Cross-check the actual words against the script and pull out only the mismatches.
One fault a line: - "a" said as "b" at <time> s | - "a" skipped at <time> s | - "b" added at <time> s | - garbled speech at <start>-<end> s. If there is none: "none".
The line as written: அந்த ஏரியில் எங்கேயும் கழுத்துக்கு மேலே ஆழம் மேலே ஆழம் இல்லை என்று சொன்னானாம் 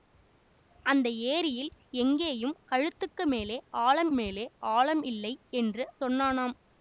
none